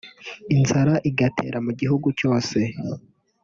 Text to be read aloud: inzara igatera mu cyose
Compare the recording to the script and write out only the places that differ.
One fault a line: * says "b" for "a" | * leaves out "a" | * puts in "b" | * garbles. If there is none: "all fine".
* puts in "gihugu"